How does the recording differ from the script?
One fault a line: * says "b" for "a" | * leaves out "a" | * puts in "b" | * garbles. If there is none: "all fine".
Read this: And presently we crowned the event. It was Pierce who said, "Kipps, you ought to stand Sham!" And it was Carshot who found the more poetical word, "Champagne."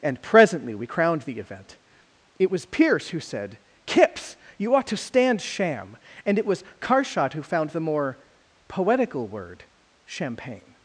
all fine